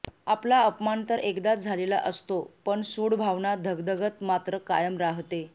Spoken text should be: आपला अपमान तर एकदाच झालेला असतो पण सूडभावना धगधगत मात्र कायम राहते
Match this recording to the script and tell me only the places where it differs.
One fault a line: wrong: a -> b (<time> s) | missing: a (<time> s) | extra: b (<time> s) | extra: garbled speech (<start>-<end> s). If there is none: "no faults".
no faults